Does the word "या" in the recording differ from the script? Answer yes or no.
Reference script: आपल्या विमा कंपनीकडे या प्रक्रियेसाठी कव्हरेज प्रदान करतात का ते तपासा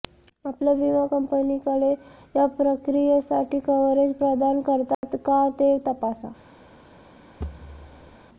no